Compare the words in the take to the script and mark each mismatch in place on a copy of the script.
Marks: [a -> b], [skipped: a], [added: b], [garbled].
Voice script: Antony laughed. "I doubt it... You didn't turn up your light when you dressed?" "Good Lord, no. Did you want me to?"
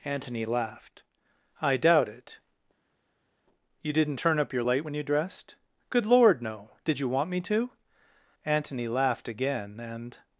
Antony laughed. "I doubt it... You didn't turn up your light when you dressed?" "Good Lord, no. Did you want me to?" [added: Antony laughed again and]